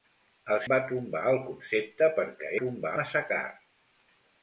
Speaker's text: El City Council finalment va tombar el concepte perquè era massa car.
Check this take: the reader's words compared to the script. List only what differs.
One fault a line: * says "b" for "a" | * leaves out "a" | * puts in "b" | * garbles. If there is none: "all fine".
* leaves out "City Council finalment"
* says "tombar" for "era"